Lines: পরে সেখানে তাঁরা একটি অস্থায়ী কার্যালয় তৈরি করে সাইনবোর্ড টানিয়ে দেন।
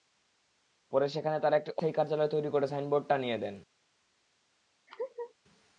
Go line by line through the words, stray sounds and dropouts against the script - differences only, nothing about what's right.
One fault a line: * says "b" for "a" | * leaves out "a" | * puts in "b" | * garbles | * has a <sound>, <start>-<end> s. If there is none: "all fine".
* has a laugh, 4.9-5.3 s